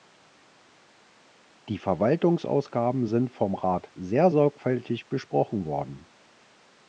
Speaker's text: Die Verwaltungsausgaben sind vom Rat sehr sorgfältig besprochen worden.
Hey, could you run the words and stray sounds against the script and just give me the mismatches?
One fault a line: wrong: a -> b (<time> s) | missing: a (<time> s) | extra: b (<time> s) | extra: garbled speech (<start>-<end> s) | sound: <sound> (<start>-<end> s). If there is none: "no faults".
no faults